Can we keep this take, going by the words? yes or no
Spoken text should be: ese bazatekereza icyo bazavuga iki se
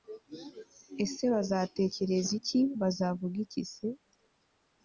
no